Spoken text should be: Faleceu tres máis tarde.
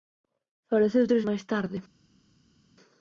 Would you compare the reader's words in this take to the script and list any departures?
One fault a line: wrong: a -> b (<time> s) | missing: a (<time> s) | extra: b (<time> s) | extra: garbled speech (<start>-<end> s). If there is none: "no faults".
no faults